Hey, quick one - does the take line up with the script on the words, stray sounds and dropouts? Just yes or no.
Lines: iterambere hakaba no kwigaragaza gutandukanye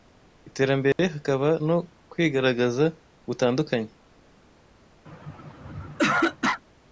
no